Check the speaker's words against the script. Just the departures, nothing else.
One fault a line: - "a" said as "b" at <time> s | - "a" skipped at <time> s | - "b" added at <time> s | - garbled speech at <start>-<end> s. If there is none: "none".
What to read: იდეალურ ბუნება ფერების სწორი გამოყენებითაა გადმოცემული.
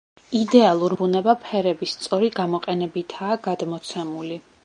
none